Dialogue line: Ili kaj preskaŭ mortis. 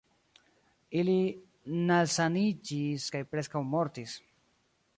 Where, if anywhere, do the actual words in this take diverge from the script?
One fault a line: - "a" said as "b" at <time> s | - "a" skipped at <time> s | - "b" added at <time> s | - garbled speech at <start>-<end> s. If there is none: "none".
- "nalsaniĝis" added at 1.9 s